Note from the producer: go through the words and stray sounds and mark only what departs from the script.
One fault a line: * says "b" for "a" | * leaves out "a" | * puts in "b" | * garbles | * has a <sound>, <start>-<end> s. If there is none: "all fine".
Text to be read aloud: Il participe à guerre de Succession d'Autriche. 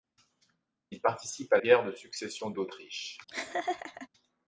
* has a laugh, 3.3-4.1 s